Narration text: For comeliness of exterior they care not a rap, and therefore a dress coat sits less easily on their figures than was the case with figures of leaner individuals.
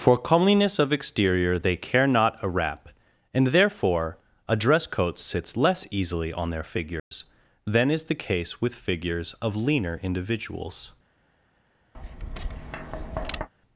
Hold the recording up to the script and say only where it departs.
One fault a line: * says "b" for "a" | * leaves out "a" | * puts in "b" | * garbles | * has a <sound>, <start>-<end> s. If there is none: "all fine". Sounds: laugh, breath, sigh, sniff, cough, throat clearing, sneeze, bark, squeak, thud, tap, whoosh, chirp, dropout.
* has a dropout, 7.0-7.1 s
* says "is" for "was"
* has a tap, 11.9-13.5 s